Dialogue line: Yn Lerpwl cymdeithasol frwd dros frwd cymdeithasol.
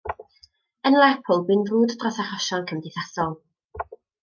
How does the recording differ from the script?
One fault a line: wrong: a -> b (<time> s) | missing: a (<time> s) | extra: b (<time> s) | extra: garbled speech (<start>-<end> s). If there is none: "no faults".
wrong: cymdeithasol -> bu'n (1.5 s)
wrong: frwd -> achosion (2.2 s)